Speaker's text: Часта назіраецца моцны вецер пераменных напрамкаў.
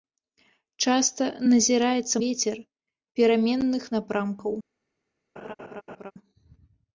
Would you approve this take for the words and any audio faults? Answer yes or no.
no